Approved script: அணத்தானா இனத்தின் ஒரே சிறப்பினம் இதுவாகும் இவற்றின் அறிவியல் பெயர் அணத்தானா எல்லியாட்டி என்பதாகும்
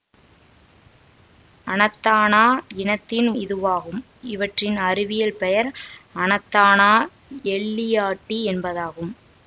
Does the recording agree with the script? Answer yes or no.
no